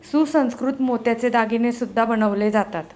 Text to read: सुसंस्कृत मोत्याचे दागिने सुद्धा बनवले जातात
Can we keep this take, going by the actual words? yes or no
yes